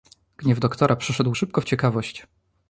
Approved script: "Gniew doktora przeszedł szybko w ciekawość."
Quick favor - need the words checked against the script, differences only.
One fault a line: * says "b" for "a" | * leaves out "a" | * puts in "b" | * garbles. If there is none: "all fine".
all fine